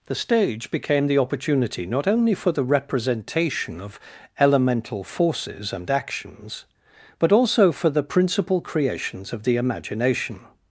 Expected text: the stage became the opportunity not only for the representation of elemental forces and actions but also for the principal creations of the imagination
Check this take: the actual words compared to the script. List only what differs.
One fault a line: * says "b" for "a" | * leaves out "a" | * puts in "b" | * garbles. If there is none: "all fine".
all fine